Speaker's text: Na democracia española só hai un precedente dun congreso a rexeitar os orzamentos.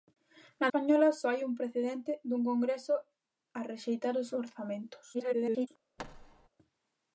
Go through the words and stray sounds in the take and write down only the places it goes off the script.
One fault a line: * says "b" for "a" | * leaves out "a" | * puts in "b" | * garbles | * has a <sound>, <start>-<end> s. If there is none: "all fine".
* leaves out "democracia"
* garbles
* has a thud, 6.0-6.5 s